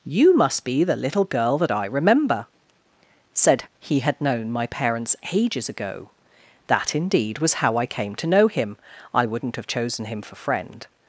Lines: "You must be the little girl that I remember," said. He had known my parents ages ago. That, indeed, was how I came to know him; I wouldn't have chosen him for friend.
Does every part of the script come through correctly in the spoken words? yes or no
yes